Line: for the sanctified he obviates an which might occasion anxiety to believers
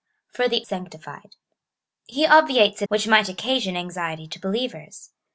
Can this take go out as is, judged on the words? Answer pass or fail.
pass